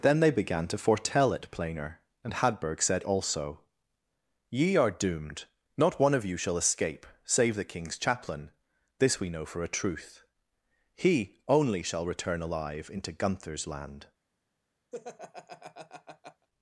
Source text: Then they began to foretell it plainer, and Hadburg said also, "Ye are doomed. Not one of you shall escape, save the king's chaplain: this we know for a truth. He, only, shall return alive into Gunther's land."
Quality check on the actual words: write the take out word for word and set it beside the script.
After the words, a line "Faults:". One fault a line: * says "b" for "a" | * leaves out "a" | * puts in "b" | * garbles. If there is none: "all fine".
Then they began to foretell it plainer, and Hadburg said also, "Ye are doomed. Not one of you shall escape, save the king's chaplain: this we know for a truth. He, only, shall return alive into Gunther's land."
Faults:
all fine